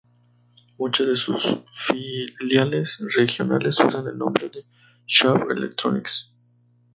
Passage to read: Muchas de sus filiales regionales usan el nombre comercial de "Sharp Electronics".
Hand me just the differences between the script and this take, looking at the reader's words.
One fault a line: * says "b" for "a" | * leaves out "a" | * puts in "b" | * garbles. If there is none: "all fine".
* leaves out "comercial"